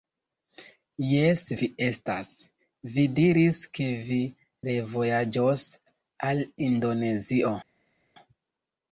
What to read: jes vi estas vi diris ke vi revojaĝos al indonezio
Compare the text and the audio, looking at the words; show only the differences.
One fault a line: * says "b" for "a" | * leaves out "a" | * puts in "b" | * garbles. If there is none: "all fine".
all fine